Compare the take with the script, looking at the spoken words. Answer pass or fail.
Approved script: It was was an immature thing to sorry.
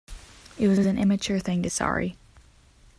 pass